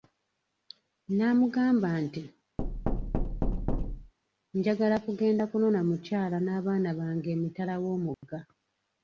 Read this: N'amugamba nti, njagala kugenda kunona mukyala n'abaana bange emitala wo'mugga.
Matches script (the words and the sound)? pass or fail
fail